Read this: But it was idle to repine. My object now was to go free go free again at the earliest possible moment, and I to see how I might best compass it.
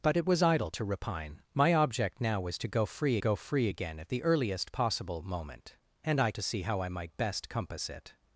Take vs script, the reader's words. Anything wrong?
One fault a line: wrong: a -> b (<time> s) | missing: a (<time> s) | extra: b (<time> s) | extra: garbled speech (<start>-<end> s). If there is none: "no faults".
no faults